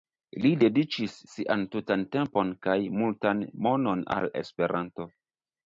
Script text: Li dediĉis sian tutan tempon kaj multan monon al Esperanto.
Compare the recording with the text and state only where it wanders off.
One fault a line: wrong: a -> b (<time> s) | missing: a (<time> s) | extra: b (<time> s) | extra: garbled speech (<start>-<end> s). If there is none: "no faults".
no faults